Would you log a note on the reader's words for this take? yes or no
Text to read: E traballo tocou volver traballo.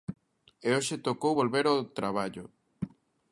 yes